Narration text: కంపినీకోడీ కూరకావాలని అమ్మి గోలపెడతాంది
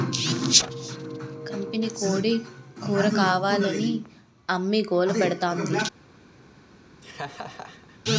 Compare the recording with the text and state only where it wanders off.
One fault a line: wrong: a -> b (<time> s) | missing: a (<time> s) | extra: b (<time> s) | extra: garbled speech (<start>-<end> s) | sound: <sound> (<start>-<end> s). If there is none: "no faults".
sound: laugh (7.0-8.0 s)